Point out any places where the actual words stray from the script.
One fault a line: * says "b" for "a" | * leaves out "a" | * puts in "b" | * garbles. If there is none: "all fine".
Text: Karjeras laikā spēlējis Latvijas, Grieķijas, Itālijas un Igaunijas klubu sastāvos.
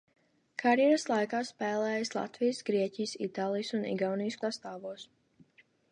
* leaves out "klubu"